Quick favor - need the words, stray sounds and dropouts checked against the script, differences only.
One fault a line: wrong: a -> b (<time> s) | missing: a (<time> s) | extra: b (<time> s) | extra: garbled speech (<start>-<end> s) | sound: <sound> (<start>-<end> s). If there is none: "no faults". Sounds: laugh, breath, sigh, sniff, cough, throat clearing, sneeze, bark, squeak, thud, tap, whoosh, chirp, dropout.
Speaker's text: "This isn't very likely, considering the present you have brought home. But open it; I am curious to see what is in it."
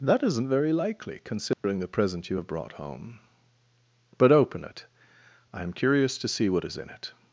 wrong: This -> That (0.0 s)
sound: dropout (1.5-1.6 s)